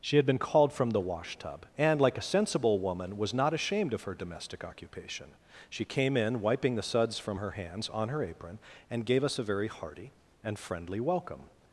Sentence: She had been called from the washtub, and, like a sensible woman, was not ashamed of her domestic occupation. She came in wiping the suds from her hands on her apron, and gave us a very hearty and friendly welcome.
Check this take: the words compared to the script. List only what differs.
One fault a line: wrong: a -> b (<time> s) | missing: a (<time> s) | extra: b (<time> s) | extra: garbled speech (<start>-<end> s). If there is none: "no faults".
no faults